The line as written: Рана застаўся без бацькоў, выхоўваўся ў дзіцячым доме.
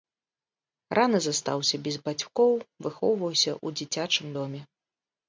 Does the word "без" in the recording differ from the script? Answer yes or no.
no